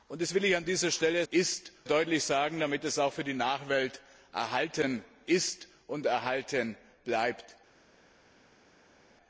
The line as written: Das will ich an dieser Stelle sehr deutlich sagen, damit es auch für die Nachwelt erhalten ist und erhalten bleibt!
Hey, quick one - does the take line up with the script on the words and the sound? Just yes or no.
no